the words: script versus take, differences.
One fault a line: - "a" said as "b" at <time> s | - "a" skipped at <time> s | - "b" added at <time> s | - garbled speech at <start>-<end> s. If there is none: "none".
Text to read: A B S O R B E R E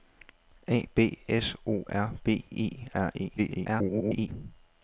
- garbled speech at 3.4-4.3 s